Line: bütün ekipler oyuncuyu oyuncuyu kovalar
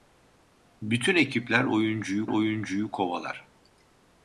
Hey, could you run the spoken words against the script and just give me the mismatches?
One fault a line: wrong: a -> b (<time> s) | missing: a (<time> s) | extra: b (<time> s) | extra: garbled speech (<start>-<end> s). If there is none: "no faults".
no faults